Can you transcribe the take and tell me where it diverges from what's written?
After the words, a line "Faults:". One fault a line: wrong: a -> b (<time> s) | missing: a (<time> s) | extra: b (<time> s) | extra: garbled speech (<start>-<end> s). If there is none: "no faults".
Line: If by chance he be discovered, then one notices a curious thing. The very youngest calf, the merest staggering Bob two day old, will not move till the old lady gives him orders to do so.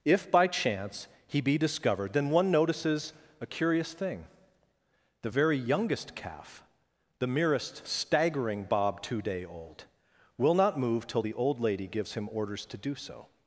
If by chance he be discovered, then one notices a curious thing. The very youngest calf, the merest staggering Bob two day old, will not move till the old lady gives him orders to do so.
Faults:
no faults